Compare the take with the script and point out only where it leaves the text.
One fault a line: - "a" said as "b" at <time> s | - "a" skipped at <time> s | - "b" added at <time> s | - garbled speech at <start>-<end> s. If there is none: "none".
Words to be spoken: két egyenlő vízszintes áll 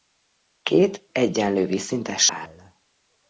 none